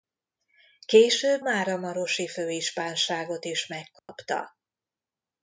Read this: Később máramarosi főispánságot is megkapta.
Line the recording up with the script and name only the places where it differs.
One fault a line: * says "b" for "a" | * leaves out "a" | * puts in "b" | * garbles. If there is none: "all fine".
all fine